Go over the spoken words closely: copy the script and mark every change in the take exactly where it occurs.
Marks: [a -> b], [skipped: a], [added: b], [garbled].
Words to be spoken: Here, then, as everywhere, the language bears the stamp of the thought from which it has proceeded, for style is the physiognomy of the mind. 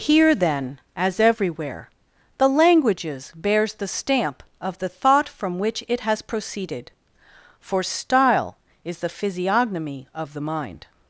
Here, then, as everywhere, the [language -> languages] bears the stamp of the thought from which it has proceeded, for style is the physiognomy of the mind.